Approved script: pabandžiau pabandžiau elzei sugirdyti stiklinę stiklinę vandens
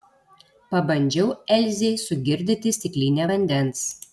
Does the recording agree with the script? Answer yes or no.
no